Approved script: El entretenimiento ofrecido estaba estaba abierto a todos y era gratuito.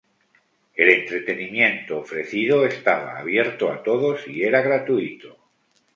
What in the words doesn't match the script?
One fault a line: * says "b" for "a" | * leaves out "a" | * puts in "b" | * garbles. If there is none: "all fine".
* leaves out "estaba"